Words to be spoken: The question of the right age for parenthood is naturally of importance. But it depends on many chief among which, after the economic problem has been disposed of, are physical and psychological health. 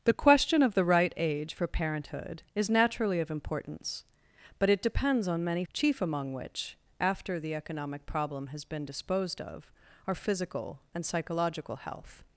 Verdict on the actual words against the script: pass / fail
pass